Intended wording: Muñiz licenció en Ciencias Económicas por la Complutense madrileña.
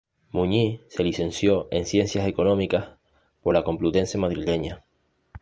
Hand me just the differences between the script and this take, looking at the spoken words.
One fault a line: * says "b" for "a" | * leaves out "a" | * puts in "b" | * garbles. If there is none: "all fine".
* puts in "se"